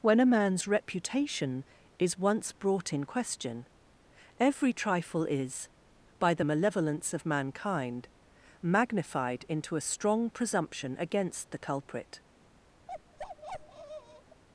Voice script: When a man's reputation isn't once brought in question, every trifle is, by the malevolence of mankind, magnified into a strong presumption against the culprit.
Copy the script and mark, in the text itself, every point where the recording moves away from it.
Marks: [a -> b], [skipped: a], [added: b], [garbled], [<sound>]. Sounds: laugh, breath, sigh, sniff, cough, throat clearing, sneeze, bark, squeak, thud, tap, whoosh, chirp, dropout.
When a man's reputation [isn't -> is] once brought in question, every trifle is, by the malevolence of mankind, magnified into a strong presumption against the culprit. [bark]